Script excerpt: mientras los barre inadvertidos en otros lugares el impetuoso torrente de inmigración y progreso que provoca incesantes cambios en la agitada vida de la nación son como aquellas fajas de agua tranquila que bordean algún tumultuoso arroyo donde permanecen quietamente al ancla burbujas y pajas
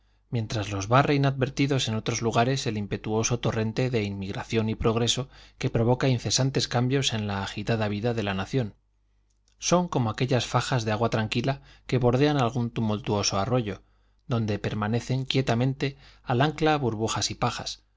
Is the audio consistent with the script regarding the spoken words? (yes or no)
yes